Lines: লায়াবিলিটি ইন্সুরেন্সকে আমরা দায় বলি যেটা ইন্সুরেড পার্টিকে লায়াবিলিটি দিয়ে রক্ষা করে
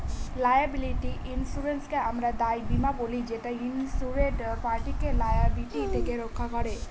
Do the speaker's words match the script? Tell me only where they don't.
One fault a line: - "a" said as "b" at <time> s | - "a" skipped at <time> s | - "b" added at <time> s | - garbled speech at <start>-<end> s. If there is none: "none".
- "বীমা" added at 2.7 s
- "দিয়ে" said as "থেকে" at 5.9 s